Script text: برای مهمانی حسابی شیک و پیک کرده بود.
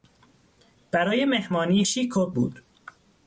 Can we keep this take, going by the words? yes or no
no